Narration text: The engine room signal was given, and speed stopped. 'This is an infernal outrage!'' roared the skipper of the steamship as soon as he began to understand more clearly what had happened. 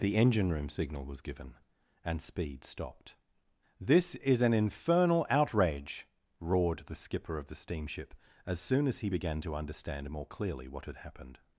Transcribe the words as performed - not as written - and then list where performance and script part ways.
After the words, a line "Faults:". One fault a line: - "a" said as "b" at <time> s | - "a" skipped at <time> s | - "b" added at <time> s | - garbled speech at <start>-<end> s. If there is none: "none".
The engine room signal was given, and speed stopped. 'This is an infernal outrage!'' roared the skipper of the steamship as soon as he began to understand more clearly what had happened.
Faults:
none